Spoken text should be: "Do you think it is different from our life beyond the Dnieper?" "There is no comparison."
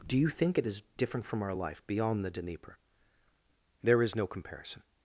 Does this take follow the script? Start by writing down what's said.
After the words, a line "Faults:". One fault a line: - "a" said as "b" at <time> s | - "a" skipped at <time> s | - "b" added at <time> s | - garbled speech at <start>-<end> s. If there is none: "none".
"Do you think it is different from our life beyond the Dnieper?" "There is no comparison."
Faults:
none